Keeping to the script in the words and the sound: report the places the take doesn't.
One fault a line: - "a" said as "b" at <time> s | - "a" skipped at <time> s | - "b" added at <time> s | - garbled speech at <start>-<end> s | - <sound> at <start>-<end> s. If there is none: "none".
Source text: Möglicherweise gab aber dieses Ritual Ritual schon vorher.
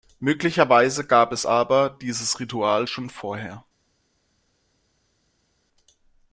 - "es" added at 1.3 s
- "Ritual" skipped at 2.9 s